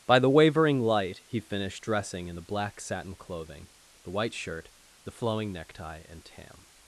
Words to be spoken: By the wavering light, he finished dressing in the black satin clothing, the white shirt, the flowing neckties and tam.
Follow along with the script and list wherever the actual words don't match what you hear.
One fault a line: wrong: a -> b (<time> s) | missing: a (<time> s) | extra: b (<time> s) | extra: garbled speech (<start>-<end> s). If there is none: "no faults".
wrong: neckties -> necktie (5.5 s)